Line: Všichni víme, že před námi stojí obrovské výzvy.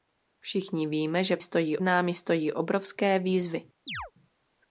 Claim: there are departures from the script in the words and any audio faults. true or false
true